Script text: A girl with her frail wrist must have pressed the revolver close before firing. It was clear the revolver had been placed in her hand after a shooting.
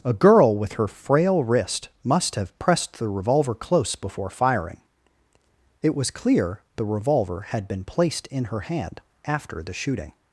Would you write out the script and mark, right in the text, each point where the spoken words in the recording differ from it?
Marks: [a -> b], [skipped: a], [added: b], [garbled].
A girl with her frail wrist must have pressed the revolver close before firing. It was clear the revolver had been placed in her hand after [a -> the] shooting.